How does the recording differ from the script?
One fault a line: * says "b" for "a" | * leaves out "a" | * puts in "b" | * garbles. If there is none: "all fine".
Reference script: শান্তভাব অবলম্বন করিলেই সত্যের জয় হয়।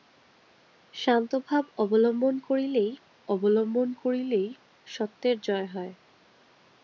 * puts in "অবলম্বন করিলেই"